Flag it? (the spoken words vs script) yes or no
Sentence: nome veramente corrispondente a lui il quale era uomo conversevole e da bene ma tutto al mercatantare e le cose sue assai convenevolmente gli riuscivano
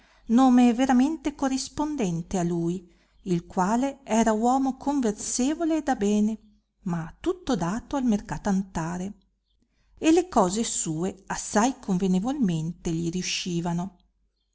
yes